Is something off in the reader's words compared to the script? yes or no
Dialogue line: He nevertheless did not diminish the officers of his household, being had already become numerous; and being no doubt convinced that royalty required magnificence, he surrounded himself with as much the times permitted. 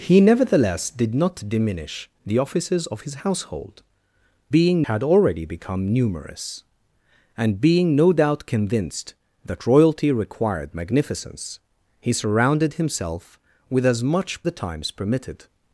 no